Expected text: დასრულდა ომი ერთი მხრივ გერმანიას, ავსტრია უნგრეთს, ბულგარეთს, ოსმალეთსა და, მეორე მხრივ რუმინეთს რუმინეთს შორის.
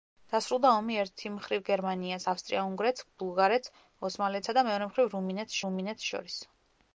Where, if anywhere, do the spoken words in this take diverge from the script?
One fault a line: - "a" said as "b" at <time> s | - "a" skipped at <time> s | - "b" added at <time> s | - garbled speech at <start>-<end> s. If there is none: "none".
none